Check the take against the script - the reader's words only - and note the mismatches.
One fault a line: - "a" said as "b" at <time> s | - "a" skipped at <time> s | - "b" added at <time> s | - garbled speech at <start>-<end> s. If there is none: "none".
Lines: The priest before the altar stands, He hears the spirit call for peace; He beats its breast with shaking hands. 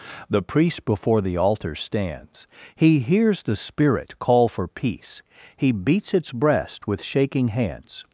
none